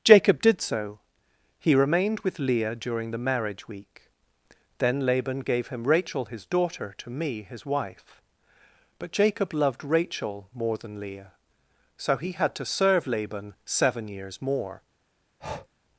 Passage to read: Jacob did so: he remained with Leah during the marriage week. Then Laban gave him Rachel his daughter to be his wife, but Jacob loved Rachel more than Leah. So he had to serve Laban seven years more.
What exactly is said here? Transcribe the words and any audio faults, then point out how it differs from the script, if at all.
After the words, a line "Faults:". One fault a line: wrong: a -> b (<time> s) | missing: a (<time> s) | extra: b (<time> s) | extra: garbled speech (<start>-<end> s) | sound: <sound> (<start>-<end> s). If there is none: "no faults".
Jacob did so: he remained with Leah during the marriage week. Then Laban gave him Rachel his daughter to me his wife, but Jacob loved Rachel more than Leah. So he had to serve Laban seven years more.
Faults:
wrong: be -> me (7.1 s)
sound: breath (15.4-15.7 s)